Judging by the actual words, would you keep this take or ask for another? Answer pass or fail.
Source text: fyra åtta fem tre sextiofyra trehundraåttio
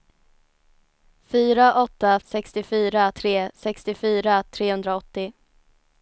fail